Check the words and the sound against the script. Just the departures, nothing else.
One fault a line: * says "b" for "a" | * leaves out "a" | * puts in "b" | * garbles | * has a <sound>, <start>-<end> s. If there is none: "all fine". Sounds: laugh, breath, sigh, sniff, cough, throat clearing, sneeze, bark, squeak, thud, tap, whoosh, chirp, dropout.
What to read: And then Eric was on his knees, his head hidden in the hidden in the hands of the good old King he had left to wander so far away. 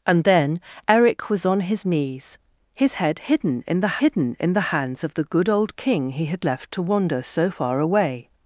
all fine